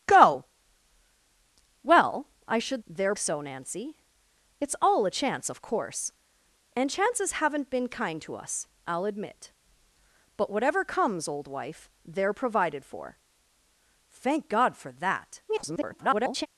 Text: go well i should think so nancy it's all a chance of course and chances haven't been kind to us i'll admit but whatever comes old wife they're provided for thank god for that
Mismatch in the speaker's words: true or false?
true